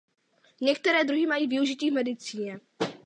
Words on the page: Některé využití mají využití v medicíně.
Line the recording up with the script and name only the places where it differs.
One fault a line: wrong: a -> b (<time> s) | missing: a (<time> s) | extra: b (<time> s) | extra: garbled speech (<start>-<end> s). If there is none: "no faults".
wrong: využití -> druhy (1.0 s)